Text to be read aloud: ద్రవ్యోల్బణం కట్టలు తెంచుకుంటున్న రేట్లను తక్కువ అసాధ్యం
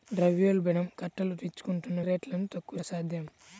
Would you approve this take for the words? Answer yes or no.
yes